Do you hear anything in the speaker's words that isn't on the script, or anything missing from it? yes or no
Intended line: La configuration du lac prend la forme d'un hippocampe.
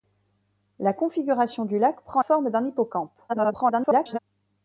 yes